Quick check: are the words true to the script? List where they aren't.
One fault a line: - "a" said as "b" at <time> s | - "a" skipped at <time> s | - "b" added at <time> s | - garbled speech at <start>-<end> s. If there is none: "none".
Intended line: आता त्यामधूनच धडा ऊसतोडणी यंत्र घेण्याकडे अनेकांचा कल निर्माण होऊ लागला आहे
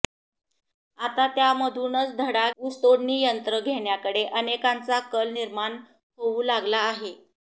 none